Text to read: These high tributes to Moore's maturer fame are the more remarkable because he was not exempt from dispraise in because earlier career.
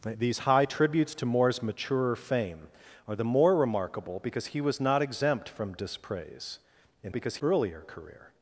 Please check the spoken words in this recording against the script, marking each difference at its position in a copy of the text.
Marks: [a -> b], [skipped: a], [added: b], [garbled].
These high tributes to Moore's maturer fame are the more remarkable because he was not exempt from dispraise in because earlier career.